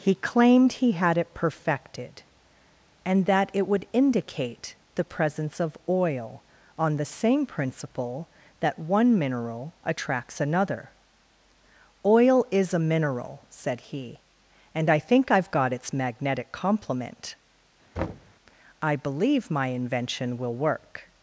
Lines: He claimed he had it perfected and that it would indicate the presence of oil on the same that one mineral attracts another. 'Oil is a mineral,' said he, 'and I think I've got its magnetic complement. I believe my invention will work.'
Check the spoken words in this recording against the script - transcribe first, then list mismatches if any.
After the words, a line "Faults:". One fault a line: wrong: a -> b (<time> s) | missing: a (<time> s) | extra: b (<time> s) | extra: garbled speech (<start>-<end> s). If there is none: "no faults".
He claimed he had it perfected and that it would indicate the presence of oil on the same principle that one mineral attracts another. 'Oil is a mineral,' said he, 'and I think I've got its magnetic complement. I believe my invention will work.'
Faults:
extra: principle (7.5 s)